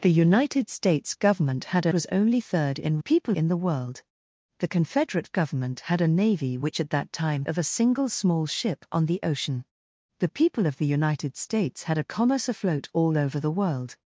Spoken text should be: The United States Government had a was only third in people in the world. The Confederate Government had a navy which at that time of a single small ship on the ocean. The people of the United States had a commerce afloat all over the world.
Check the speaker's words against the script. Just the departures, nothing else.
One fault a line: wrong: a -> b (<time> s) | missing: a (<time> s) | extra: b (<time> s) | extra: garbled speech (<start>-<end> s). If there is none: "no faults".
no faults